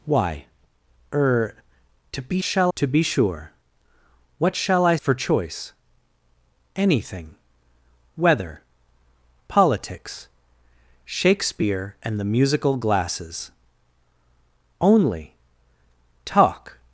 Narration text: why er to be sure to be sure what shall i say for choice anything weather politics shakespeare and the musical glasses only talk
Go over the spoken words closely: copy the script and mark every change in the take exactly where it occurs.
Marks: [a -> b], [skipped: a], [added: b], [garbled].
why er to be [sure -> shall] to be sure what shall i [skipped: say] for choice anything weather politics shakespeare and the musical glasses only talk